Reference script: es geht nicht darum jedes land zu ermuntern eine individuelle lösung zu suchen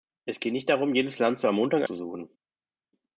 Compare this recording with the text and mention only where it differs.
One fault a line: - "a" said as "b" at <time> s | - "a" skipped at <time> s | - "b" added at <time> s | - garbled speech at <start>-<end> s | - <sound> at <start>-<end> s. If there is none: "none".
- "eine individuelle lösung" skipped at 1.8 s